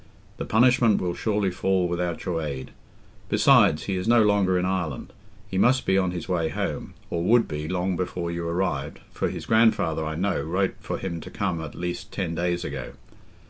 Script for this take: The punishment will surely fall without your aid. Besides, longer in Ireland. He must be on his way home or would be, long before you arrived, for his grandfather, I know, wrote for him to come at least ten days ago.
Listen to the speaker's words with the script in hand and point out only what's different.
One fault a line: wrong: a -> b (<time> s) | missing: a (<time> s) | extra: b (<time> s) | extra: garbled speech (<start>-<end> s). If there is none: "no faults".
extra: he is no (3.8 s)